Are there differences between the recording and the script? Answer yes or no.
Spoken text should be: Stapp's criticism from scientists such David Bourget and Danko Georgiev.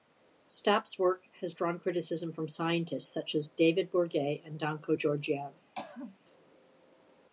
yes